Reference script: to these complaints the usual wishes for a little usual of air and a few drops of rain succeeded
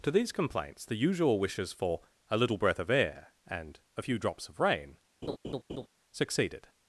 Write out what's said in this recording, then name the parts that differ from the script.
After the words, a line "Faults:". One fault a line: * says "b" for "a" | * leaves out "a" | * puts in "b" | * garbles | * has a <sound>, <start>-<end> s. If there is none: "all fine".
to these complaints the usual wishes for a little breath of air and a few drops of rain succeeded
Faults:
* says "breath" for "usual"
* has a laugh, 5.2-5.9 s